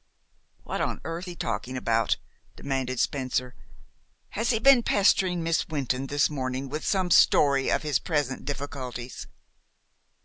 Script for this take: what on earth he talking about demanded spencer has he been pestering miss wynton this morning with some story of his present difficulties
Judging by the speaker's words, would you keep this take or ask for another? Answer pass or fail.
pass